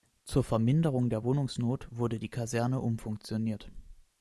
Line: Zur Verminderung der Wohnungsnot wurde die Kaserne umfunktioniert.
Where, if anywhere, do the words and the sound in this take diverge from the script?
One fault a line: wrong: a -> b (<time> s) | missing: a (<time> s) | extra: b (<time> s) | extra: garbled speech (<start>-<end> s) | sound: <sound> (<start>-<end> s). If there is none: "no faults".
no faults